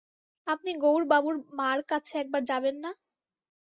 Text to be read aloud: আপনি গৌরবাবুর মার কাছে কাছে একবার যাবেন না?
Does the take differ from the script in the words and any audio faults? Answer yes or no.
yes